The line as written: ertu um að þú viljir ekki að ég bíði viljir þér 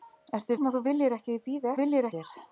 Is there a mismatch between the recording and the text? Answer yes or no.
no